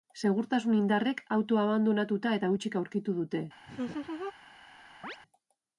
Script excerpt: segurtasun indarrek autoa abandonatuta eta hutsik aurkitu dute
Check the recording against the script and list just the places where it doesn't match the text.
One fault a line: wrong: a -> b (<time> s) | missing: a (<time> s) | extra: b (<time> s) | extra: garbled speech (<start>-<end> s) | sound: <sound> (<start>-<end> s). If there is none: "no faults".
sound: laugh (3.7-4.3 s)
sound: chirp (5.0-5.2 s)